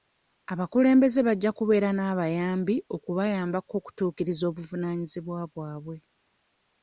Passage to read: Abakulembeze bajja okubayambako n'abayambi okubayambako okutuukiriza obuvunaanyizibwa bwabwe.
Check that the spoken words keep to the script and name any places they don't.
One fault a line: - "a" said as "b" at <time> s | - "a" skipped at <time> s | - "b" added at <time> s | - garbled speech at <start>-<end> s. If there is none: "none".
- "okubayambako" said as "kubeera" at 1.6 s